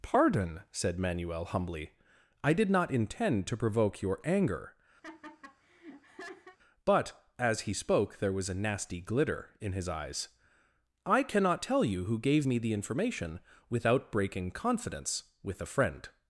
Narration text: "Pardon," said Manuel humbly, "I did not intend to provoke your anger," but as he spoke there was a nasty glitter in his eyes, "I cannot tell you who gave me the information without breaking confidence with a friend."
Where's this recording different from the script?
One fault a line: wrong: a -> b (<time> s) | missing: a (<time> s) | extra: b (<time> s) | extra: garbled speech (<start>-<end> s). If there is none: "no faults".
no faults